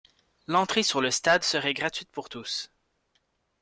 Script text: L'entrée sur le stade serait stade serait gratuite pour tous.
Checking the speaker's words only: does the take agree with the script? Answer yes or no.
no